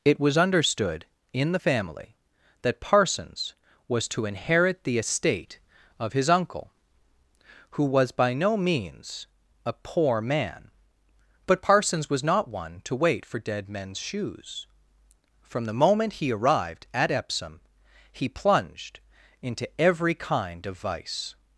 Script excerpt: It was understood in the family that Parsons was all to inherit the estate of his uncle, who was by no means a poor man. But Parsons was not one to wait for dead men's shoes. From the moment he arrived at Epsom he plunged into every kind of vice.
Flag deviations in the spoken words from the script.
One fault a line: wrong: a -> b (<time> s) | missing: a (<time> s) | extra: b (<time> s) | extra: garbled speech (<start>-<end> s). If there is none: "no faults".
missing: all (4.1 s)